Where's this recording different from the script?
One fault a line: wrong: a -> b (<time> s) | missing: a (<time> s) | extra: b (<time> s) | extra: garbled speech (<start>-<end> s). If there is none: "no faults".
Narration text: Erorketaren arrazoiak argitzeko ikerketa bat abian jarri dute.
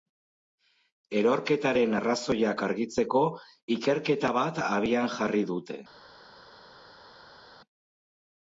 no faults